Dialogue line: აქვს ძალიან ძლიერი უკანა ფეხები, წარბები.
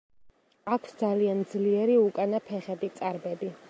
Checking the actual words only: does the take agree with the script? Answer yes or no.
yes